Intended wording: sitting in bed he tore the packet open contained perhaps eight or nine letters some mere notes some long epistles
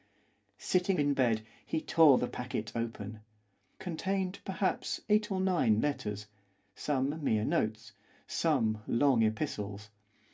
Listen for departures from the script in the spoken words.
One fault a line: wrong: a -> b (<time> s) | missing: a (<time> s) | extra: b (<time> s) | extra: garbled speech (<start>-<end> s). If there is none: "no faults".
no faults